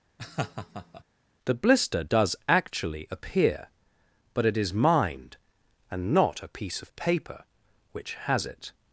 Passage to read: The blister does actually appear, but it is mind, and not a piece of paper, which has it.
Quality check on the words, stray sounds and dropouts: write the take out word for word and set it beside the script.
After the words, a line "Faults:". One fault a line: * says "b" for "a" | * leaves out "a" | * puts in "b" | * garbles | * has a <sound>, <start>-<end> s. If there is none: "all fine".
The blister does actually appear, but it is mind, and not a piece of paper, which has it.
Faults:
* has a laugh, 0.2-1.0 s